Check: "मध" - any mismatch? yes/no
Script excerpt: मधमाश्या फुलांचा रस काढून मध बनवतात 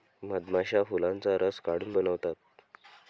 yes